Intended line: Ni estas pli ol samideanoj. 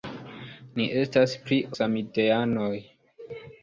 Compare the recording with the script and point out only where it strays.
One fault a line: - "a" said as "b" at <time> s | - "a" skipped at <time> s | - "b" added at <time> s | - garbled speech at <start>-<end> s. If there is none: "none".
- "ol" skipped at 1.6 s